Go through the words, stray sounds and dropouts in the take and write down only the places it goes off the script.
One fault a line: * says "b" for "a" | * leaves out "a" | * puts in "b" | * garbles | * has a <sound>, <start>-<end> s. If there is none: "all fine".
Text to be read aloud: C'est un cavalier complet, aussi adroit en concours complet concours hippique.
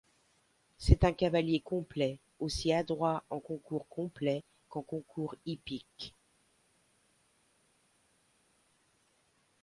* puts in "qu'en"